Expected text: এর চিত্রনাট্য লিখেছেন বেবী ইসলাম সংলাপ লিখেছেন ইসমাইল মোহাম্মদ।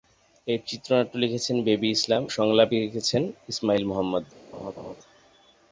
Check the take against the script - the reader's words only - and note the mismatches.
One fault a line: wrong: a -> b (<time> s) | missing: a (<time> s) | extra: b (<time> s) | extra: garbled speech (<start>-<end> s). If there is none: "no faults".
no faults